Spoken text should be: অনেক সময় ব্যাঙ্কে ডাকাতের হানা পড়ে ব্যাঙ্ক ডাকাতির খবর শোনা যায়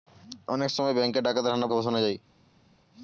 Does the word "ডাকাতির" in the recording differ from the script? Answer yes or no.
yes